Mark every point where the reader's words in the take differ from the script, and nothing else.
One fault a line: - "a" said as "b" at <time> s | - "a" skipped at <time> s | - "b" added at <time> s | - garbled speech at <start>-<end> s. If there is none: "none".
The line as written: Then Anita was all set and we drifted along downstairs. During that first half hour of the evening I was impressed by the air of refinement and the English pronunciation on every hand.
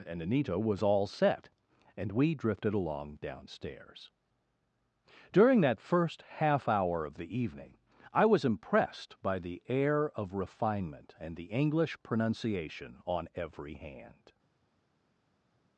- "Then" said as "And" at 0.1 s